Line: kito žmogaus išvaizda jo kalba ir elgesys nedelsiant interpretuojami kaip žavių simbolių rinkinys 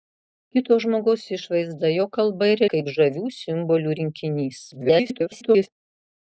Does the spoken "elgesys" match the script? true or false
false